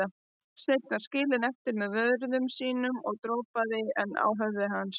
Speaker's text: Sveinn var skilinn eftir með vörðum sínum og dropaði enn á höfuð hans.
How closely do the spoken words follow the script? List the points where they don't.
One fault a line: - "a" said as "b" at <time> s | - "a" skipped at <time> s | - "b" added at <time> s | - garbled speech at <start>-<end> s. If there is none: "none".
none